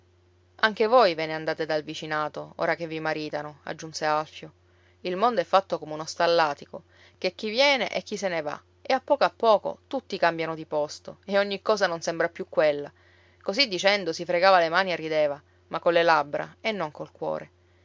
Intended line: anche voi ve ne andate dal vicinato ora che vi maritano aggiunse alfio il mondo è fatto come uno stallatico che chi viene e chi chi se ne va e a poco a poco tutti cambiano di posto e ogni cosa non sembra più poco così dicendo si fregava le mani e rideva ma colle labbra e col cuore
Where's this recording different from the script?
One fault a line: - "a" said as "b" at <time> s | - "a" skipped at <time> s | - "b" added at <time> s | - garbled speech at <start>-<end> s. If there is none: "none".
- "chi" skipped at 8.2 s
- "poco" said as "quella" at 12.5 s
- "non" added at 16.7 s